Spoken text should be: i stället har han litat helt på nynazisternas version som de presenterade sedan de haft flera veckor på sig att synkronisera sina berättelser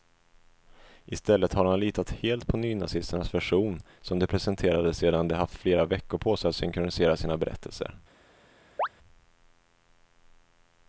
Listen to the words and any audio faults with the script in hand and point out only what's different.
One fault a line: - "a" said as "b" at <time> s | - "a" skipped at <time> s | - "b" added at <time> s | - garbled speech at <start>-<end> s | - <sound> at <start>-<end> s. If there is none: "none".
- chirp at 8.8-8.9 s